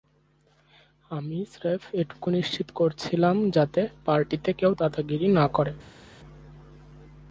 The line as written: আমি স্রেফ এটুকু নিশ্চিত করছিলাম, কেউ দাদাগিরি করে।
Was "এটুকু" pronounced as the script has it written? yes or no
yes